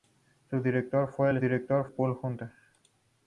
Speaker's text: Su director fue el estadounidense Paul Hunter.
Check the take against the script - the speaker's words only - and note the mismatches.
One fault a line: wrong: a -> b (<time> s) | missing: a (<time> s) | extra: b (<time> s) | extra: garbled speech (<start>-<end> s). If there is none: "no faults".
wrong: estadounidense -> director (1.4 s)